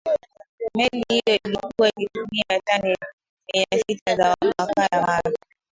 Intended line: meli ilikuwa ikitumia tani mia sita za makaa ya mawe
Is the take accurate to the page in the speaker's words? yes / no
no